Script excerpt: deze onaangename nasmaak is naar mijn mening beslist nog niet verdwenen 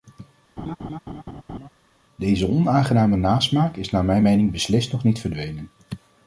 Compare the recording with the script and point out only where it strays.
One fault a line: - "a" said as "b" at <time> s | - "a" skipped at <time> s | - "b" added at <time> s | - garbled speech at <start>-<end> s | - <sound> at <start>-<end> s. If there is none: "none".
- laugh at 0.6-1.7 s